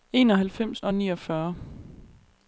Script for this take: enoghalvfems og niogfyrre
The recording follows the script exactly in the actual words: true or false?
true